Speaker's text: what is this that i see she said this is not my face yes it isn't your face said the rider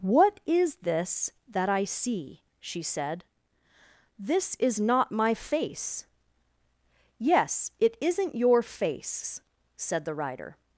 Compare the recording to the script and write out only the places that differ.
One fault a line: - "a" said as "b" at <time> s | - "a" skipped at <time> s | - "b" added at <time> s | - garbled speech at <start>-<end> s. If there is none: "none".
none